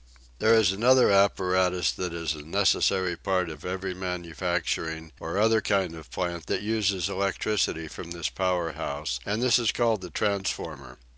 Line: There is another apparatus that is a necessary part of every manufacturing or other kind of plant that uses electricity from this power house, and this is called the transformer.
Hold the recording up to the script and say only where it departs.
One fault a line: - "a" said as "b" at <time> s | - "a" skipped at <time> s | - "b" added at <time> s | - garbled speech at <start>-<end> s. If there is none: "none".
none